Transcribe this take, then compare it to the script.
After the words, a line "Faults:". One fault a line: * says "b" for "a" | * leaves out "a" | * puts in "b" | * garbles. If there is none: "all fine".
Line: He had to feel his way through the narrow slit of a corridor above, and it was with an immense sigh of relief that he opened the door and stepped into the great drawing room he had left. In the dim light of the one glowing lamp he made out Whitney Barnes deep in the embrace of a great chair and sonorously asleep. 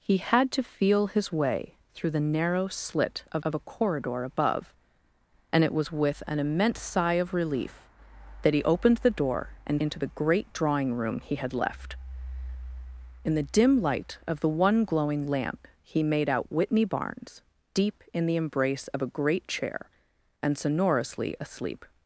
He had to feel his way through the narrow slit of of a corridor above, and it was with an immense sigh of relief that he opened the door and into the great drawing room he had left. In the dim light of the one glowing lamp he made out Whitney Barnes deep in the embrace of a great chair and sonorously asleep.
Faults:
* puts in "of"
* leaves out "stepped"